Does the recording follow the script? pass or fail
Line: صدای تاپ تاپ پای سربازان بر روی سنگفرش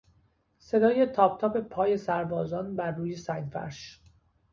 pass